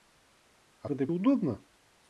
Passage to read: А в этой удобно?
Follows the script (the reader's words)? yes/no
yes